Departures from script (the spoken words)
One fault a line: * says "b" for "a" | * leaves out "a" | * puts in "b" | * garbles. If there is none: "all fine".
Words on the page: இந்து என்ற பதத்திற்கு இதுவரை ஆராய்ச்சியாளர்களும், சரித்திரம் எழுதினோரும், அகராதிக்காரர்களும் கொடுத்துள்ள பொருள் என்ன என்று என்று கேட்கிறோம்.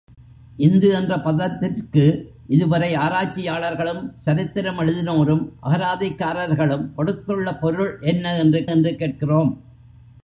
all fine